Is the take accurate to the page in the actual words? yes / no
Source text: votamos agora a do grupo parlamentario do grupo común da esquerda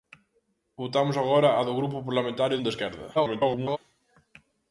no